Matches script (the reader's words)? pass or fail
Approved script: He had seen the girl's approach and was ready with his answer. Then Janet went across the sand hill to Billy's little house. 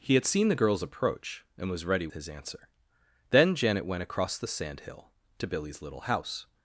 fail